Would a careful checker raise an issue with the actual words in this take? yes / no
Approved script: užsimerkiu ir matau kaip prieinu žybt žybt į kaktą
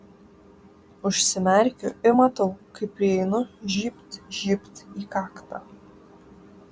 no